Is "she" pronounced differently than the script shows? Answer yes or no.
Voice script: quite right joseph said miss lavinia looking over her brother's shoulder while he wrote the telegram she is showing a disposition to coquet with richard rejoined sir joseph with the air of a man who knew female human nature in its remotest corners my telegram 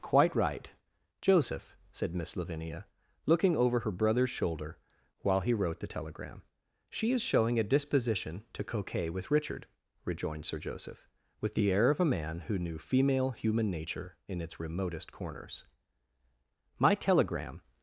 no